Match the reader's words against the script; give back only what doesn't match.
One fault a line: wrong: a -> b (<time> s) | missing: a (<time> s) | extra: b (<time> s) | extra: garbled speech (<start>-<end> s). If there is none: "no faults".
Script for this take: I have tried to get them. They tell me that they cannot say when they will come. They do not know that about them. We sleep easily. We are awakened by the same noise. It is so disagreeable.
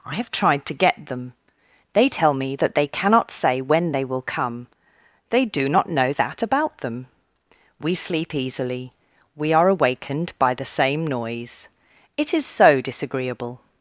no faults